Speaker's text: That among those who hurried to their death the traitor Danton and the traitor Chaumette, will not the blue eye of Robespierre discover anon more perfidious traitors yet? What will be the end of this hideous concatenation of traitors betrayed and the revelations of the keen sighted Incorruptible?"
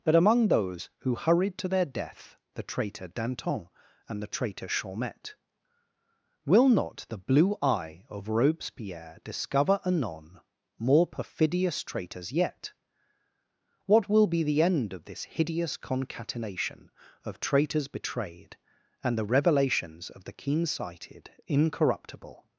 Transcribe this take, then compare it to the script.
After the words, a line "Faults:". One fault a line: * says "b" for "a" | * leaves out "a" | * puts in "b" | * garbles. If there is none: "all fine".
That among those who hurried to their death the traitor Danton and the traitor Chaumette, will not the blue eye of Robespierre discover anon more perfidious traitors yet? What will be the end of this hideous concatenation of traitors betrayed and the revelations of the keen sighted Incorruptible?"
Faults:
all fine